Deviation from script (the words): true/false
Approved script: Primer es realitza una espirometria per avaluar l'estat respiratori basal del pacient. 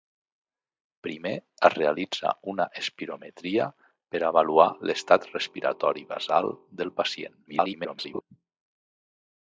true